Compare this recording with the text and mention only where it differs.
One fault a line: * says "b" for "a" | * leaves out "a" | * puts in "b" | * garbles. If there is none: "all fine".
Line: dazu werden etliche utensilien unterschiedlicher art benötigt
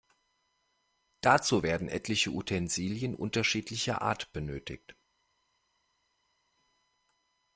all fine